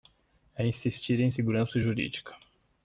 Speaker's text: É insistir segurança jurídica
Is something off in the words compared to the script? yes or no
yes